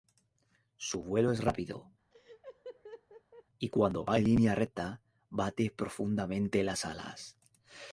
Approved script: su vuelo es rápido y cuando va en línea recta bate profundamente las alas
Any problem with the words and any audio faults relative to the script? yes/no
yes